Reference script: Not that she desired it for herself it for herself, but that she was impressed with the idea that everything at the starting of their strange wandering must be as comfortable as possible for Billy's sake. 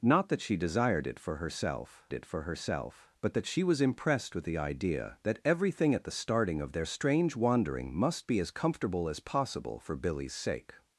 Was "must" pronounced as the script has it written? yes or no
yes